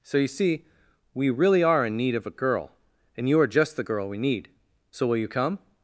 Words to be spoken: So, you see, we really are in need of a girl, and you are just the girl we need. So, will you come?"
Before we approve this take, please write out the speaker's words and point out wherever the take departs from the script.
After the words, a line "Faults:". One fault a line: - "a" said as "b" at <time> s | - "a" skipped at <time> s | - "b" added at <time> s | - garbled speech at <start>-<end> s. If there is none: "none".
So, you see, we really are in need of a girl, and you are just the girl we need. So, will you come?"
Faults:
none